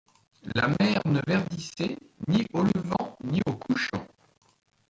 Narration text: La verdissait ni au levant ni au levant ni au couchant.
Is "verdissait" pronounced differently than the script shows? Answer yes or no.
yes